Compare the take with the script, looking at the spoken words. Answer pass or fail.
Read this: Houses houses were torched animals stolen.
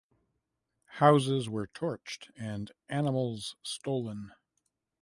fail